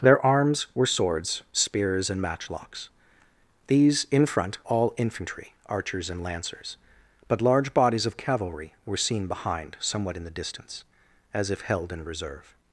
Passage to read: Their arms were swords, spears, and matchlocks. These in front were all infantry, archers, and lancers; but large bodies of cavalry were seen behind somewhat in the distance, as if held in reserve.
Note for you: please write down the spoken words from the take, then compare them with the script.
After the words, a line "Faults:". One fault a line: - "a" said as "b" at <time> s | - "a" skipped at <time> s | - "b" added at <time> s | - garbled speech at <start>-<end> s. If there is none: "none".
Their arms were swords, spears, and matchlocks. These in front all infantry, archers, and lancers; but large bodies of cavalry were seen behind somewhat in the distance, as if held in reserve.
Faults:
- "were" skipped at 4.6 s